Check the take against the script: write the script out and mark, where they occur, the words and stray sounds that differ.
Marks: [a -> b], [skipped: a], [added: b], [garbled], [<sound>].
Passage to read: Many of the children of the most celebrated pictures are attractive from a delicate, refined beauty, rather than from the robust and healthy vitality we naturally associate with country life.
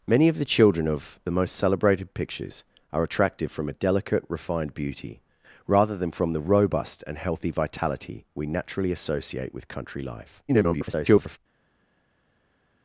Many of the children of the most celebrated pictures are attractive from a delicate, refined beauty, rather than from the robust and healthy vitality we naturally associate with country life. [garbled]